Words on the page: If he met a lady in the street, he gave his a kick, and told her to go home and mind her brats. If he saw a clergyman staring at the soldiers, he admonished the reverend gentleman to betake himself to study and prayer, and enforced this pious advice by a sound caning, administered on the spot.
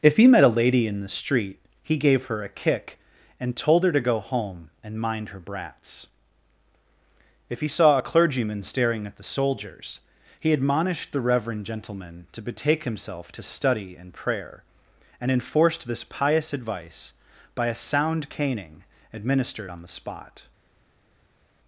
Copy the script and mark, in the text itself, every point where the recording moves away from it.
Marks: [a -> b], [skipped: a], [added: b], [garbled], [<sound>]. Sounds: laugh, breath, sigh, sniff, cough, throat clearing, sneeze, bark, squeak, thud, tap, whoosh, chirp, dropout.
If he met a lady in the street, he gave [his -> her] a kick, and told her to go home and mind her brats. If he saw a clergyman staring at the soldiers, he admonished the reverend gentleman to betake himself to study and prayer, and enforced this pious advice by a sound caning, administered on the spot.